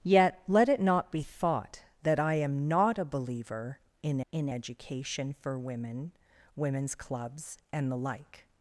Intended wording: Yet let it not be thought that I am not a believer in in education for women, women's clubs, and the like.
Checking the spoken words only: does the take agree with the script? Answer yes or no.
yes